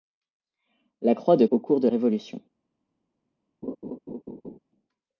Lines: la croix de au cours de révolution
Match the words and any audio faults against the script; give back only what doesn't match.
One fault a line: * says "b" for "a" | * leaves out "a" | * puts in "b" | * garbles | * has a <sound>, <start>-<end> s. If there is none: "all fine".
* has a laugh, 3.6-4.6 s